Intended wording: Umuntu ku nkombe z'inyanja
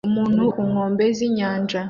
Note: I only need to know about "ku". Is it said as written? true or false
true